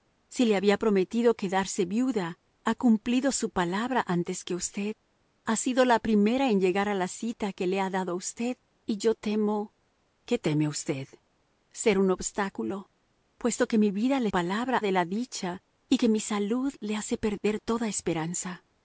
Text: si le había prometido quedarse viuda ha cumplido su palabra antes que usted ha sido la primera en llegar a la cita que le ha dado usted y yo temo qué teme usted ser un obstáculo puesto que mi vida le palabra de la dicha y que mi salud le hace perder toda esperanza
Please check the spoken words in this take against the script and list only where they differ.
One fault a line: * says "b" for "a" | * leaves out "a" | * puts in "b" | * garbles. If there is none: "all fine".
all fine